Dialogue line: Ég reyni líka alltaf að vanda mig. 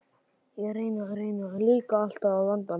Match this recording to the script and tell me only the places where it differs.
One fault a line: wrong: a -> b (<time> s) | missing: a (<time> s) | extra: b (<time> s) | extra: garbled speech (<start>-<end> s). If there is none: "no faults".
extra: reyni (1.2 s)